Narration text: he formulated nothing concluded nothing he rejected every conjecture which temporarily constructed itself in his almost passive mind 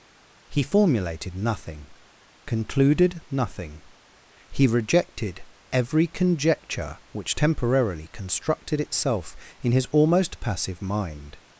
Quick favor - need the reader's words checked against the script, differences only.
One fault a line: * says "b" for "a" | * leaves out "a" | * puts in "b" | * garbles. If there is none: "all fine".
all fine